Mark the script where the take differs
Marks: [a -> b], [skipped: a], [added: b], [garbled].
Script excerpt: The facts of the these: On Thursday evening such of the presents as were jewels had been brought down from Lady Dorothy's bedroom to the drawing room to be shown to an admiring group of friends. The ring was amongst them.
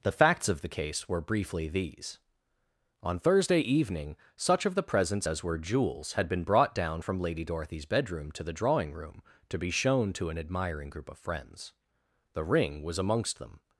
The facts of the [added: case were briefly] these: On Thursday evening such of the presents as were jewels had been brought down from Lady Dorothy's bedroom to the drawing room to be shown to an admiring group of friends. The ring was amongst them.